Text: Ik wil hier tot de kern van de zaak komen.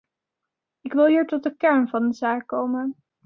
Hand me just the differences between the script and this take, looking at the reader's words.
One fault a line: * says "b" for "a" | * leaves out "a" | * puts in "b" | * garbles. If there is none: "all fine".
all fine